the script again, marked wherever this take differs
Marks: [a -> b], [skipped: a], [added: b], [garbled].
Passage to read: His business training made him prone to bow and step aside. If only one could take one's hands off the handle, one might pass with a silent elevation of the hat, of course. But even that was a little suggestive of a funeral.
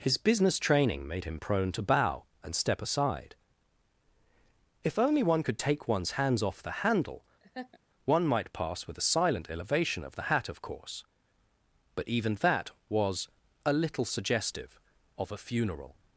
His business training made him prone to bow and step aside. If only one could take one's hands off the handle, one might pass with a silent elevation of the hat, of course. But even that was a little suggestive of a funeral.